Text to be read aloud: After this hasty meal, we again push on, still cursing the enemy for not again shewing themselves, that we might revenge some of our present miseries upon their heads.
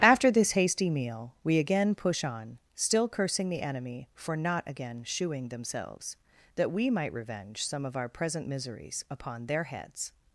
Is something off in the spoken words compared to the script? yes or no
no